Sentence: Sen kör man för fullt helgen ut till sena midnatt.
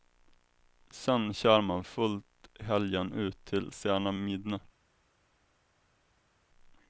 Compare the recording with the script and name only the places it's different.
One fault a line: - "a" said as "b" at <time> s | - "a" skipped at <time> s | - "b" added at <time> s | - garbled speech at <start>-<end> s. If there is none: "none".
- "för" skipped at 1.8 s